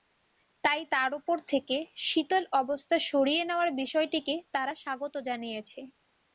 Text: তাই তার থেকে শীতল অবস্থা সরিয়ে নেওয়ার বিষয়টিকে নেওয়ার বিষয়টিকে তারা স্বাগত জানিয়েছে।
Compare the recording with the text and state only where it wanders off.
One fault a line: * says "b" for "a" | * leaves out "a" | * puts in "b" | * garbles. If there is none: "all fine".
* puts in "ওপর"
* leaves out "নেওয়ার বিষয়টিকে"